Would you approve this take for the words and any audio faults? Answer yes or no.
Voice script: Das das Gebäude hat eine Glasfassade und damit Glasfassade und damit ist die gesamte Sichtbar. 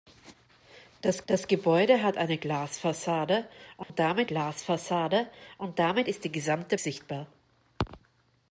no